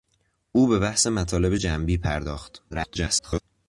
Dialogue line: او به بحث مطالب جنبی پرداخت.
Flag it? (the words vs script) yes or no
yes